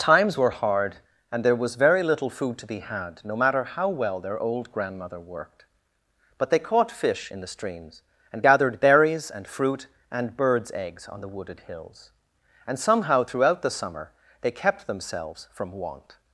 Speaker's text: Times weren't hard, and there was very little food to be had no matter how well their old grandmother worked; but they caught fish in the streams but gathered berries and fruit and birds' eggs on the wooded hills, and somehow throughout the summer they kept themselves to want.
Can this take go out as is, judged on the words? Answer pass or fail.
fail